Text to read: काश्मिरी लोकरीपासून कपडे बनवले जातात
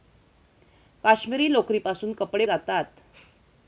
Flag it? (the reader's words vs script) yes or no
yes